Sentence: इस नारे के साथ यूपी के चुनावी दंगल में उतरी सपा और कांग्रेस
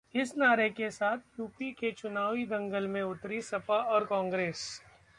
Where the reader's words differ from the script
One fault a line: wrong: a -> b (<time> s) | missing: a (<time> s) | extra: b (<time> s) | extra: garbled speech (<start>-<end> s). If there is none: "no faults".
no faults